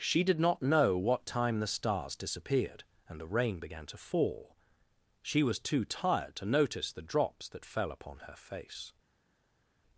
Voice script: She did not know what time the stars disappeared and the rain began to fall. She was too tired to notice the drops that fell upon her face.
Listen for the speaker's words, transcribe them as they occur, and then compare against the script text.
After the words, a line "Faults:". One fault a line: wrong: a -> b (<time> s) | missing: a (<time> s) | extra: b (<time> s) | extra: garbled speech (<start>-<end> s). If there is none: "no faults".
She did not know what time the stars disappeared and the rain began to fall. She was too tired to notice the drops that fell upon her face.
Faults:
no faults